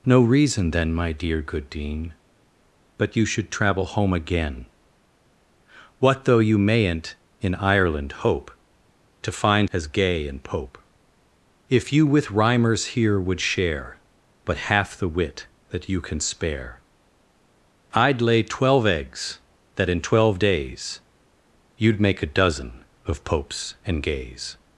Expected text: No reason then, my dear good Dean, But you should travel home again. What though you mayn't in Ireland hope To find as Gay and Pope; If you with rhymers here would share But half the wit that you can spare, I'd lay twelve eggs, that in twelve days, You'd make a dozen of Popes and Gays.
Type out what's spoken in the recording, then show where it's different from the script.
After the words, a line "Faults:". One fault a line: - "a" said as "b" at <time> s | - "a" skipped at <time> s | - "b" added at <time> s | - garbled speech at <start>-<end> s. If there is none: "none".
No reason then, my dear good Dean, But you should travel home again. What though you mayn't in Ireland hope To find as Gay and Pope; If you with rhymers here would share But half the wit that you can spare, I'd lay twelve eggs, that in twelve days, You'd make a dozen of Popes and Gays.
Faults:
none